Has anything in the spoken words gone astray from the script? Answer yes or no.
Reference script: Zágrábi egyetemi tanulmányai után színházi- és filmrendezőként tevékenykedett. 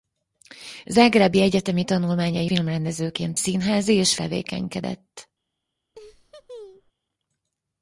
yes